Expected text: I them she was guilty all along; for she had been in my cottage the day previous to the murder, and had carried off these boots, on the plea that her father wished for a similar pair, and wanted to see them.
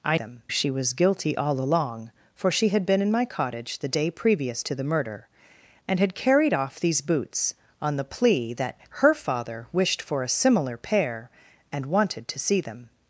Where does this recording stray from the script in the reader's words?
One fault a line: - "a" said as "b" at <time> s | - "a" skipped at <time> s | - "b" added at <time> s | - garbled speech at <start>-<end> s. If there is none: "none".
none